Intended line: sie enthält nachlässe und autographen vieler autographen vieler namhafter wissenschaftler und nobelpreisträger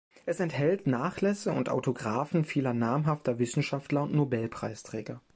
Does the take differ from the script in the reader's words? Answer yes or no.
yes